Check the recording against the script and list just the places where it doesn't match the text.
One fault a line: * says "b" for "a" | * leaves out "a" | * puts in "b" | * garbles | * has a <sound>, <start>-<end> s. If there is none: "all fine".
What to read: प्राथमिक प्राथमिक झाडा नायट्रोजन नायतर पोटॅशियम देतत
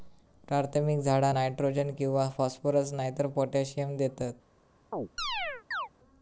* leaves out "प्राथमिक"
* puts in "किंवा फॉस्फरस"
* has a chirp, 4.9-5.9 s